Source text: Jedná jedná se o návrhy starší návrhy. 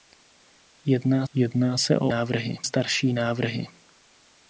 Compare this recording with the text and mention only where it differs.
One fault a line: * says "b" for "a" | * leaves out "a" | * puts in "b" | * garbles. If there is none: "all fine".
all fine